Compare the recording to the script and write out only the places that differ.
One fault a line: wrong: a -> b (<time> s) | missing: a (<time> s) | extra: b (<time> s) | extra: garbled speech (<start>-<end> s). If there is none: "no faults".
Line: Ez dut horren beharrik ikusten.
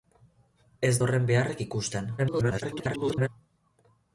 missing: dut (0.9 s)
extra: garbled speech (2.2-3.3 s)